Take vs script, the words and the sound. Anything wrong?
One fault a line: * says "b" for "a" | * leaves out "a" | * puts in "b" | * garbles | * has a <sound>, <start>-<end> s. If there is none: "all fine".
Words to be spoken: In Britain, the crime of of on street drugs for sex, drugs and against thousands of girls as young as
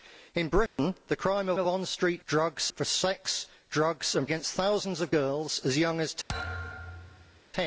* has a dropout, 0.7-0.8 s
* has a thud, 6.3-7.4 s